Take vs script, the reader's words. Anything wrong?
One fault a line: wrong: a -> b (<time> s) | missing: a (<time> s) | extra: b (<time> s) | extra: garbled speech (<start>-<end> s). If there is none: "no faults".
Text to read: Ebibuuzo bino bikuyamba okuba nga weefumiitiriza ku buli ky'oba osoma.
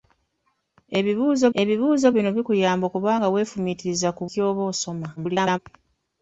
extra: ebibuuzo (1.6 s)
missing: buli (4.2 s)
extra: garbled speech (5.2-5.6 s)